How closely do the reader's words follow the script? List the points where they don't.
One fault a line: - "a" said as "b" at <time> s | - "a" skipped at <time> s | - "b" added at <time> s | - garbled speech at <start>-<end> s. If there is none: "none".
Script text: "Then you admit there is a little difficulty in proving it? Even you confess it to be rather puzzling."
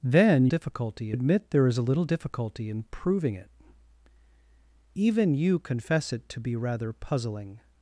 - "you" said as "difficulty" at 0.5 s